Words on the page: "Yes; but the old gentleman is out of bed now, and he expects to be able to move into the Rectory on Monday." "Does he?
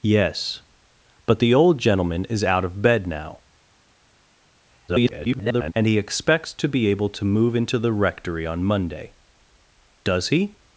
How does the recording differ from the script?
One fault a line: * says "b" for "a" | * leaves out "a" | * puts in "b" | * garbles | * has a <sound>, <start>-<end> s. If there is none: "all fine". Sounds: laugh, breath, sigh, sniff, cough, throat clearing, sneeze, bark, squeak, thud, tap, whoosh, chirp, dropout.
* garbles